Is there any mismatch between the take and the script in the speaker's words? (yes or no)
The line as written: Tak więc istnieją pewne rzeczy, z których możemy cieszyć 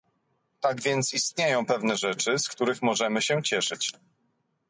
yes